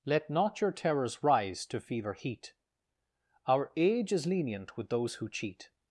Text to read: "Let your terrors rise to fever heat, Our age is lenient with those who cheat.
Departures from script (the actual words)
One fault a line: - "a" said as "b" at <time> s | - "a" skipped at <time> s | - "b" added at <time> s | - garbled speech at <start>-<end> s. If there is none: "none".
- "not" added at 0.3 s